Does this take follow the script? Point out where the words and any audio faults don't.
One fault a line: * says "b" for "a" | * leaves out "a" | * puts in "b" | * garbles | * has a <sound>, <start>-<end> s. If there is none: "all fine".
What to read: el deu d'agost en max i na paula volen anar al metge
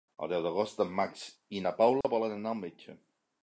* has a dropout, 2.0-2.0 s